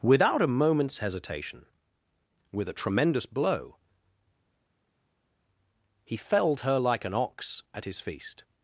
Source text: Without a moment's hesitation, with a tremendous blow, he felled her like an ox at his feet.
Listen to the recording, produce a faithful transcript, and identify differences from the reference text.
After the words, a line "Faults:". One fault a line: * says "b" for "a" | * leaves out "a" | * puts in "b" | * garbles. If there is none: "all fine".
Without a moment's hesitation, with a tremendous blow, he felled her like an ox at his feast.
Faults:
* says "feast" for "feet"